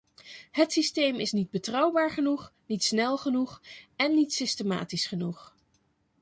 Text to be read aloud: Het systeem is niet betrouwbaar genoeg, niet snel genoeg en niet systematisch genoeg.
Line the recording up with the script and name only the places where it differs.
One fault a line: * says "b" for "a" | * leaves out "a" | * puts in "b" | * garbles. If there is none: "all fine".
all fine